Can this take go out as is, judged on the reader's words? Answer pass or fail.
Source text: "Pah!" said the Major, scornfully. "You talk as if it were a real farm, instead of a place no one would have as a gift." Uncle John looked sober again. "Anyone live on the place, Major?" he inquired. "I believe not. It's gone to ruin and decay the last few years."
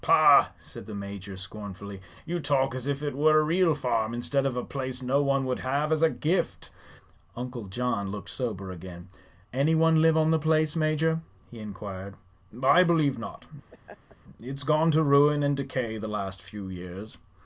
pass